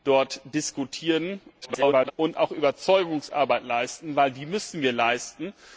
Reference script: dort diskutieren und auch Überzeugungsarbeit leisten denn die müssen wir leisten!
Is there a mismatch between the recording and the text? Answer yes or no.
yes